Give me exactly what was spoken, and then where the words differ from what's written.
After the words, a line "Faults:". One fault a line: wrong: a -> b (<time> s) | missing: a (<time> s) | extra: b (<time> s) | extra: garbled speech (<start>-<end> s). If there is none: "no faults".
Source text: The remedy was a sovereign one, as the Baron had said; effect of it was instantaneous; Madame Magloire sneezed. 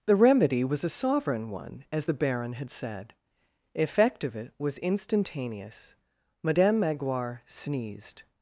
The remedy was a sovereign one, as the Baron had said; effect of it was instantaneous; Madame Magloire sneezed.
Faults:
no faults